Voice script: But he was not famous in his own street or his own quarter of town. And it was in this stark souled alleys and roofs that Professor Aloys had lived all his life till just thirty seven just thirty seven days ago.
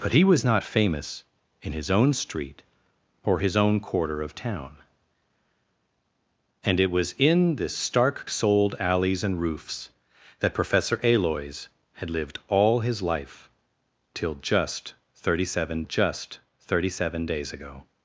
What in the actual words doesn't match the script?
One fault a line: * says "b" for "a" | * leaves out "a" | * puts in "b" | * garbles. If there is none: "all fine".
all fine